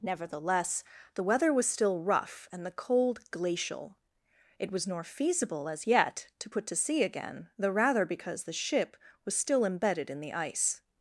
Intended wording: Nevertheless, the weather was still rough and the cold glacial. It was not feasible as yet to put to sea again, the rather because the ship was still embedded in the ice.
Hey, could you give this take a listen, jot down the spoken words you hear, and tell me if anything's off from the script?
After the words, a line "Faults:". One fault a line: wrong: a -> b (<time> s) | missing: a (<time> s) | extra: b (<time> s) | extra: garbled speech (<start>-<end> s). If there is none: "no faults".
Nevertheless, the weather was still rough and the cold glacial. It was nor feasible as yet to put to sea again, the rather because the ship was still embedded in the ice.
Faults:
wrong: not -> nor (4.9 s)